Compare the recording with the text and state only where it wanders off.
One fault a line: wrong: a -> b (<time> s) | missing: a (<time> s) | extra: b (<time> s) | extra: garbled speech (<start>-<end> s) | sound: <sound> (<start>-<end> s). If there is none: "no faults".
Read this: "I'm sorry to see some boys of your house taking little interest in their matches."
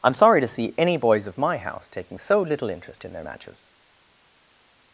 wrong: some -> any (0.8 s)
wrong: your -> my (1.4 s)
extra: so (2.2 s)